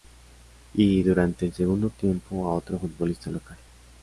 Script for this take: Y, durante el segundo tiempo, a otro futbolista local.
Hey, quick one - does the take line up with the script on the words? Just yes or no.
yes